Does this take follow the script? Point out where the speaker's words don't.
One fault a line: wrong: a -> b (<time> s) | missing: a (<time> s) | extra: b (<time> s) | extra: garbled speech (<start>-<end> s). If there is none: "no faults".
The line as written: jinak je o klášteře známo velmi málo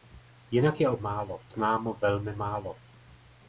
wrong: klášteře -> málo (1.0 s)